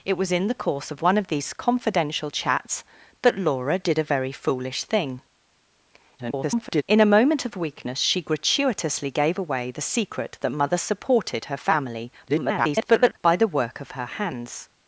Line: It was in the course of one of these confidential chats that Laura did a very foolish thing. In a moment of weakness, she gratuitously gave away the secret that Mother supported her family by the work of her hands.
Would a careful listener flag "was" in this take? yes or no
no